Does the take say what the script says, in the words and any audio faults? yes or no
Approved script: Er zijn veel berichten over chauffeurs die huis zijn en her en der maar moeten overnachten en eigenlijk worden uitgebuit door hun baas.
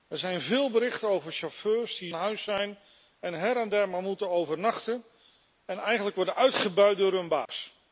no